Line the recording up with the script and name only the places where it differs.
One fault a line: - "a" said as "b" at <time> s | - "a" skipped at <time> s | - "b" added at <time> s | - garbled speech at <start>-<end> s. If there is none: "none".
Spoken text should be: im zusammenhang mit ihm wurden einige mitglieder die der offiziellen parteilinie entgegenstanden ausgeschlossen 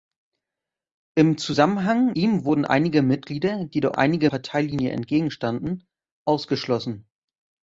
- "mit" skipped at 2.1 s
- "offiziellen" said as "einige" at 3.9 s